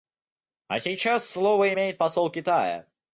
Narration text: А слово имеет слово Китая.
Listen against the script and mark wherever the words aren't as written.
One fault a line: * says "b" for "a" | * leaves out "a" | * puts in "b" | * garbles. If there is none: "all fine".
* puts in "сейчас"
* says "посол" for "слово"